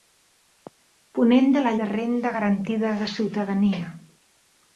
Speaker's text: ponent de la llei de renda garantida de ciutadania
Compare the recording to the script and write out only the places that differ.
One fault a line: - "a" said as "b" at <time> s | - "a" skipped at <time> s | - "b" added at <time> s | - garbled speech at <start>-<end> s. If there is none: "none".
- "llei" skipped at 1.8 s